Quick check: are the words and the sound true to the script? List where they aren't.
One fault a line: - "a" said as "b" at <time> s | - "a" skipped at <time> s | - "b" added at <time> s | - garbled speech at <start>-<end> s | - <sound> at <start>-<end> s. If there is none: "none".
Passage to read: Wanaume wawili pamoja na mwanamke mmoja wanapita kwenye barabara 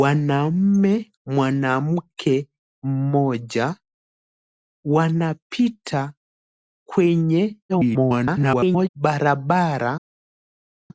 - "wawili pamoja na" skipped at 1.1 s
- garbled speech at 7.7-8.9 s